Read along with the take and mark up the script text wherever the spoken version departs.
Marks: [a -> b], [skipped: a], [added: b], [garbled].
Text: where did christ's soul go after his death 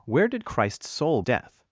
where did christ's soul [skipped: go after his] death